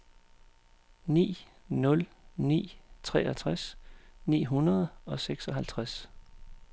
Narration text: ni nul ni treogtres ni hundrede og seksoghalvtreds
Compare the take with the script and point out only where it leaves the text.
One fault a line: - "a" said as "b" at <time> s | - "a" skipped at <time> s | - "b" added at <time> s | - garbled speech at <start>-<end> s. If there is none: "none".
none